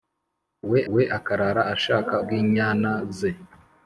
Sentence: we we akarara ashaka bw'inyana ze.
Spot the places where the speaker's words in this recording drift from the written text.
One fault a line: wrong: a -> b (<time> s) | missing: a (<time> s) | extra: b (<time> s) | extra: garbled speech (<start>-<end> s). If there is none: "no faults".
no faults